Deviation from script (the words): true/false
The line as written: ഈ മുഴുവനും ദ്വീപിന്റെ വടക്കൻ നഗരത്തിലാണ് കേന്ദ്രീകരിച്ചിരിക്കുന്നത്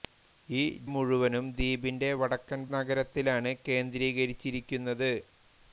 false